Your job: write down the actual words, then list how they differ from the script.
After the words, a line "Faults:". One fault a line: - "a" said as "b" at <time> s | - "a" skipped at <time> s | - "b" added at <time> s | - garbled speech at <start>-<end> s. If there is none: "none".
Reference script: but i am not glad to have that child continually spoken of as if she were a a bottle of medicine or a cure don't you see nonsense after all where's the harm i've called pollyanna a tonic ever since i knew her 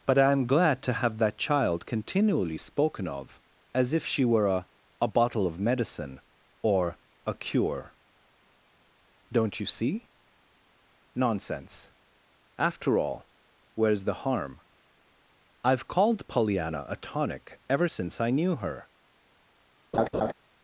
but i am glad to have that child continually spoken of as if she were a a bottle of medicine or a cure don't you see nonsense after all where's the harm i've called pollyanna a tonic ever since i knew her
Faults:
- "not" skipped at 0.5 s